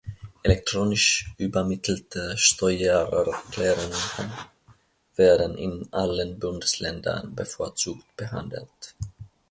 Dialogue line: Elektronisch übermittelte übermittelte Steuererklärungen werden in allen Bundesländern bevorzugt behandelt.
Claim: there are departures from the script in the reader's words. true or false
true